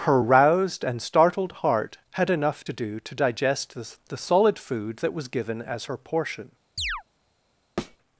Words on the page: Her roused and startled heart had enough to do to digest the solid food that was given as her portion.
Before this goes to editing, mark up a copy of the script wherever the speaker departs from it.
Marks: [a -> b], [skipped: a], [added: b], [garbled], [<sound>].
Her roused and startled heart had enough to do to digest the [added: the] solid food that was given as her portion. [chirp] [thud]